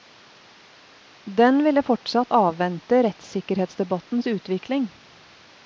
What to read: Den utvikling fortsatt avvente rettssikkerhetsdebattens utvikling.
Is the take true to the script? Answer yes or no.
no